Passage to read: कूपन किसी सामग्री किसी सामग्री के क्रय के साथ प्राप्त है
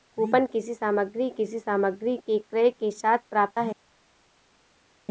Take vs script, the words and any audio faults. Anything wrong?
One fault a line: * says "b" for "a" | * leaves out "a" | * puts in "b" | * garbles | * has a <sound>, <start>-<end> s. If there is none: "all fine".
all fine